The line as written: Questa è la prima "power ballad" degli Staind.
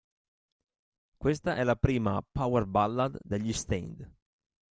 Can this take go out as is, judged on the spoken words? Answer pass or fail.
pass